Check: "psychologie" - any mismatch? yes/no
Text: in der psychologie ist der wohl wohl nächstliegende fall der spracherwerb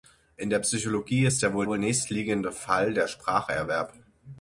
no